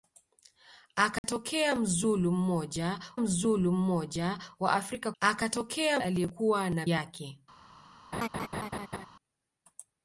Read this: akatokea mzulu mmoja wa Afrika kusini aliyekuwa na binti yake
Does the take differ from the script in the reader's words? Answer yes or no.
yes